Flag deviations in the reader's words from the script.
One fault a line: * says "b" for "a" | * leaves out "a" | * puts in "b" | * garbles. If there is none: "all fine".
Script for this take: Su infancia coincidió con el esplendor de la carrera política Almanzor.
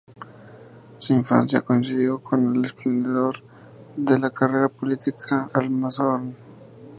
all fine